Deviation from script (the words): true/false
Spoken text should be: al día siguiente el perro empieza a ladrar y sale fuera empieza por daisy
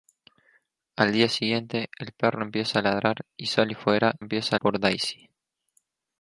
false